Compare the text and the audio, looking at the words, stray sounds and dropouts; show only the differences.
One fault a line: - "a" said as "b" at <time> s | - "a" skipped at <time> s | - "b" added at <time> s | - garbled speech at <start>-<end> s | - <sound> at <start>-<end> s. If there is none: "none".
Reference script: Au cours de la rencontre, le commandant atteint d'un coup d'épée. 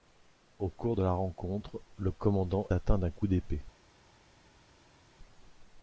none